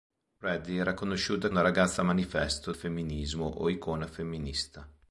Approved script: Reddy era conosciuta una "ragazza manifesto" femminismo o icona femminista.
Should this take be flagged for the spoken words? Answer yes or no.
no